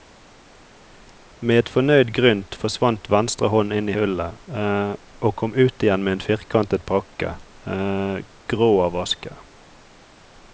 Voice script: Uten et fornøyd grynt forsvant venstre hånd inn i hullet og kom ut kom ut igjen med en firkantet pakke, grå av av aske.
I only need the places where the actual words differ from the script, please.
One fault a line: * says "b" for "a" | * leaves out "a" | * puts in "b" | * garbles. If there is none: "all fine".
* says "Med" for "Uten"
* leaves out "kom ut"
* leaves out "av"